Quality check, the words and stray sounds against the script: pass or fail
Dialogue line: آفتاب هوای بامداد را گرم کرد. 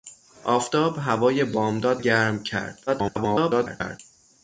fail